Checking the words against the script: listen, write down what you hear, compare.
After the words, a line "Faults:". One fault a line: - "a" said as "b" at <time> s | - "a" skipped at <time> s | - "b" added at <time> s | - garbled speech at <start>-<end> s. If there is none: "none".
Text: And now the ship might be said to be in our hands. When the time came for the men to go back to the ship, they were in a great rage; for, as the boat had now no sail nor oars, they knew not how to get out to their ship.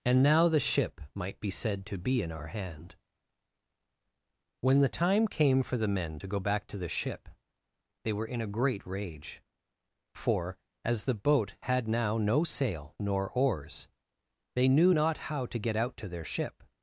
And now the ship might be said to be in our hand. When the time came for the men to go back to the ship, they were in a great rage; for, as the boat had now no sail nor oars, they knew not how to get out to their ship.
Faults:
- "hands" said as "hand" at 2.5 s